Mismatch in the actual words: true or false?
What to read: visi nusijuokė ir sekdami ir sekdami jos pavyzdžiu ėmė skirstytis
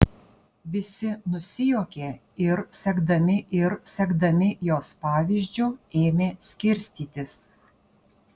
false